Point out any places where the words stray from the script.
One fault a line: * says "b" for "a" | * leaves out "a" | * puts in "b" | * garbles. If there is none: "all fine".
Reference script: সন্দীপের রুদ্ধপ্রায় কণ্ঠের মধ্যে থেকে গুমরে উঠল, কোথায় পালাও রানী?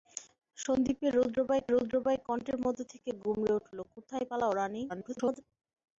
* puts in "রুদ্ধপ্রায়"
* garbles